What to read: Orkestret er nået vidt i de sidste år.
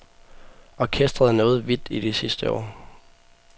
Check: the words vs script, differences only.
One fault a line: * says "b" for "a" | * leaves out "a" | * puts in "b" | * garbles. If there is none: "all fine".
all fine